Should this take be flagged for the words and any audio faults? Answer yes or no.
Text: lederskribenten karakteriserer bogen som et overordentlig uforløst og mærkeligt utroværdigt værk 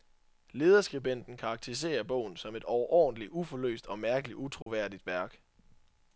yes